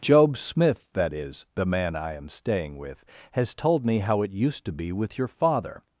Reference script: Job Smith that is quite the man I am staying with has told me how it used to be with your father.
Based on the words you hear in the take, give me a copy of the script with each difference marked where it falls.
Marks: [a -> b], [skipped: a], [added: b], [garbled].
Job Smith that is [skipped: quite] the man I am staying with has told me how it used to be with your father.